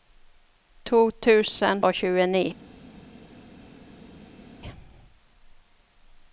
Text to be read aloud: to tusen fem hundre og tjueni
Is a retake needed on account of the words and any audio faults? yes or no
yes